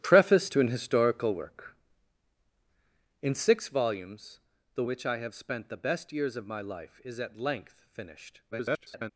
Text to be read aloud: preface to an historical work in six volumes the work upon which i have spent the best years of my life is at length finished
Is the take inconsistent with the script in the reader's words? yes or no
yes